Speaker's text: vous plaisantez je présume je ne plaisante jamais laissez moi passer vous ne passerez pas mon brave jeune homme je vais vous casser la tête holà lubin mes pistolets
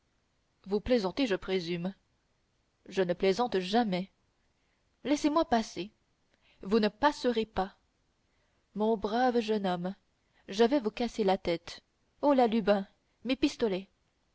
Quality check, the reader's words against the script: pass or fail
pass